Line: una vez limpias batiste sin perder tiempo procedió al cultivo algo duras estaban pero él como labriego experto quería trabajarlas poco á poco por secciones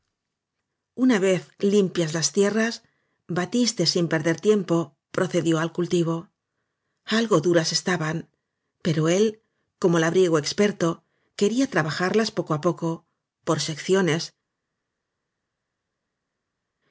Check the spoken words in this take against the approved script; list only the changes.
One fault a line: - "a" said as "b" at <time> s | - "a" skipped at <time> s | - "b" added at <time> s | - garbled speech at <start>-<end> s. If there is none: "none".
- "las tierras" added at 2.1 s